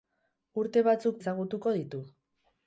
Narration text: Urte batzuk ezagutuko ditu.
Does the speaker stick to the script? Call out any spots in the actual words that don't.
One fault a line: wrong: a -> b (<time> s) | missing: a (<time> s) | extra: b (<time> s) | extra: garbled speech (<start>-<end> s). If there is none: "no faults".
no faults